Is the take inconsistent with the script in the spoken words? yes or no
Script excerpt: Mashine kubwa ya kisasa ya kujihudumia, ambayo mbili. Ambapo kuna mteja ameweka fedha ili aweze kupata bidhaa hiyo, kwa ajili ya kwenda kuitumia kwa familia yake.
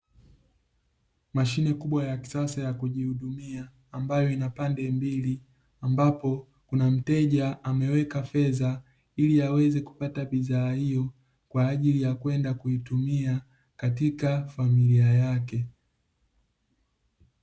yes